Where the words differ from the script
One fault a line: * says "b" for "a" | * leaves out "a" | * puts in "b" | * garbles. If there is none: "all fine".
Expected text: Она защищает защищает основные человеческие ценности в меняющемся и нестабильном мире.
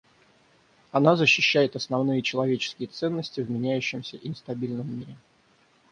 * leaves out "защищает"